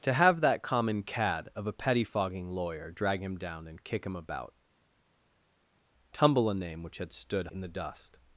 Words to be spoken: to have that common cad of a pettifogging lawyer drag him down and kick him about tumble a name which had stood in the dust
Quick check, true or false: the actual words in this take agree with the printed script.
true